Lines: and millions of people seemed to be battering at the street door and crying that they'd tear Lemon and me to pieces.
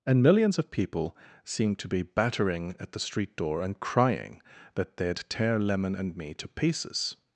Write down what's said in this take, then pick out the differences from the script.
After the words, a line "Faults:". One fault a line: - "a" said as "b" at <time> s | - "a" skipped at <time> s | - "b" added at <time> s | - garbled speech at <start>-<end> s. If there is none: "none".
and millions of people seemed to be battering at the street door and crying that they'd tear Lemon and me to pieces.
Faults:
none